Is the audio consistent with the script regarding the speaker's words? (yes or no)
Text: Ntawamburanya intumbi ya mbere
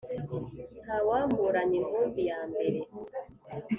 yes